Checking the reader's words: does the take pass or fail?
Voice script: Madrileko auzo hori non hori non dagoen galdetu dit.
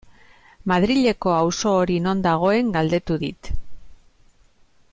fail